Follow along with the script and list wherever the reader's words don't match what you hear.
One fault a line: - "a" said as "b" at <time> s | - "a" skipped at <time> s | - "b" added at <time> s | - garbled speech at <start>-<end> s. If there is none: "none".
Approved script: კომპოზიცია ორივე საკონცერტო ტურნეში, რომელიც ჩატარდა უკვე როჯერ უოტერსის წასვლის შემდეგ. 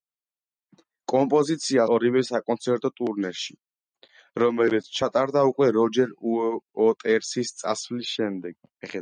none